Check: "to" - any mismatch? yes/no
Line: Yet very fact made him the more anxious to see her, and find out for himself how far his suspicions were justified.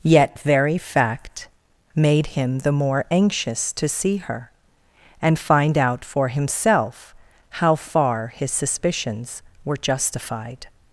no